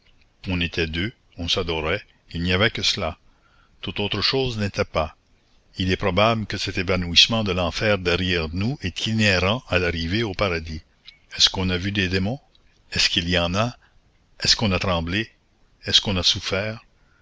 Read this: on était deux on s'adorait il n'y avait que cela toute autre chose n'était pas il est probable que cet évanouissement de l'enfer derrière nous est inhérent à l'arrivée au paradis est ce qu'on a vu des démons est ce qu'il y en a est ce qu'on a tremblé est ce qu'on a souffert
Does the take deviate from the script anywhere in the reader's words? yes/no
no